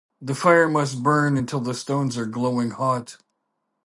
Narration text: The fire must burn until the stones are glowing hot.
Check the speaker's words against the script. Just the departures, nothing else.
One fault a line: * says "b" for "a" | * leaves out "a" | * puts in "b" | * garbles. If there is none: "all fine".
all fine